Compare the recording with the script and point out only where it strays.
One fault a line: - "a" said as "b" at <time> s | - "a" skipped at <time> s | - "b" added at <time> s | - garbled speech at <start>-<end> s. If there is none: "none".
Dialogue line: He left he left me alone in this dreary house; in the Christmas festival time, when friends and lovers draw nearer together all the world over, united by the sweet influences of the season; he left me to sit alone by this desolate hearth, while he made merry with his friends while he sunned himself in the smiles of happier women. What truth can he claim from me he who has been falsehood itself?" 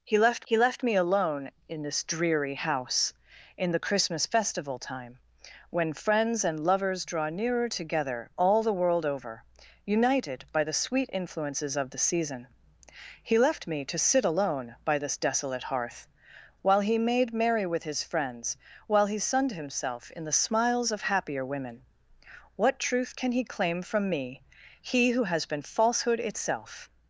none